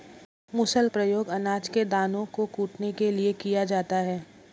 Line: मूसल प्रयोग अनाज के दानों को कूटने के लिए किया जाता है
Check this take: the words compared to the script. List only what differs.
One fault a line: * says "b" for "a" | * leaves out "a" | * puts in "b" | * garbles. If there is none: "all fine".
all fine